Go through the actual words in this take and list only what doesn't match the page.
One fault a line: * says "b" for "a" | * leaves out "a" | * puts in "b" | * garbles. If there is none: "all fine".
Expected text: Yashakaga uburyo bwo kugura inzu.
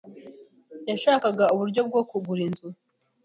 all fine